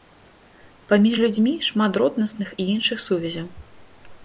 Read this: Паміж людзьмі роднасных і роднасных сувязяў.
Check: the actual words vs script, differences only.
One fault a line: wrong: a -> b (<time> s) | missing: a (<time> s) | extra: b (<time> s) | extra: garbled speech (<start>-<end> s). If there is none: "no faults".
extra: шмат (1.7 s)
wrong: роднасных -> іншых (2.8 s)